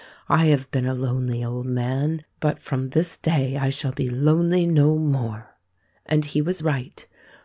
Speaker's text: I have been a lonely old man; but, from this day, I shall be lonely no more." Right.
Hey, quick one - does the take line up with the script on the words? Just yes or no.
no